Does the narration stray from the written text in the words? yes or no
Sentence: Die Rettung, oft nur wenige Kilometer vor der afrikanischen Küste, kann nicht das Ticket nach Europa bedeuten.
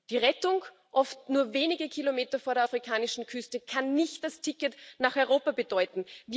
no